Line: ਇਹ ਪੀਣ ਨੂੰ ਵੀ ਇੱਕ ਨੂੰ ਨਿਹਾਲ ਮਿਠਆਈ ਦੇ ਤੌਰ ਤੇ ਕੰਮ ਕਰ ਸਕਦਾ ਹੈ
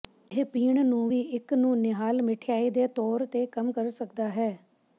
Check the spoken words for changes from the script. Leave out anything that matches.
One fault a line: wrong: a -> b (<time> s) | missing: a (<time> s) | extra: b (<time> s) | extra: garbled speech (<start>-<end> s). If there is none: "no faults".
no faults